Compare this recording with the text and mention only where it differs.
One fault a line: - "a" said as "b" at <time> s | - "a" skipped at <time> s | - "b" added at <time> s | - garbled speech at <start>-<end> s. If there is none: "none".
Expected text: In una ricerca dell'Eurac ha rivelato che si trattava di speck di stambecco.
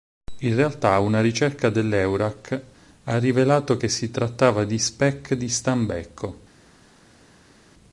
- "realtà" added at 0.6 s